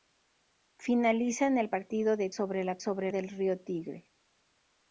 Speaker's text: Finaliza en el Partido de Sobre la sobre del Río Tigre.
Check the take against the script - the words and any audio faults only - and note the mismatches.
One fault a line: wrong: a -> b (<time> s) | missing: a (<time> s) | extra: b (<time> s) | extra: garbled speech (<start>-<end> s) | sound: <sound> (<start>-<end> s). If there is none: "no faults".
no faults